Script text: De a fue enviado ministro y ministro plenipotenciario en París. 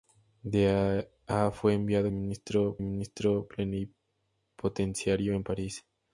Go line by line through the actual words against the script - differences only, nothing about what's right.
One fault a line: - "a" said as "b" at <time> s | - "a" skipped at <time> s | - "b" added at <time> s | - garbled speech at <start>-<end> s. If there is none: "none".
none